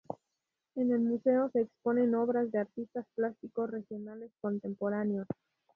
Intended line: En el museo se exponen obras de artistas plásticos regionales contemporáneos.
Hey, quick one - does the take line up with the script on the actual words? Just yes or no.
yes